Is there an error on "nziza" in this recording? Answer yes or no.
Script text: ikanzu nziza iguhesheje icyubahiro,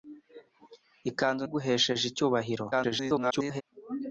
yes